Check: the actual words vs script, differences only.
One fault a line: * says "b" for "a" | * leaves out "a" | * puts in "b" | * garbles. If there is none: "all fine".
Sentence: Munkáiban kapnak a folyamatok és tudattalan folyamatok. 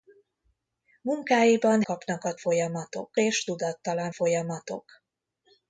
all fine